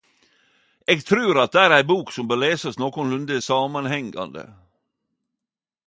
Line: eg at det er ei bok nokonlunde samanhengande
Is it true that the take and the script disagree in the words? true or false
true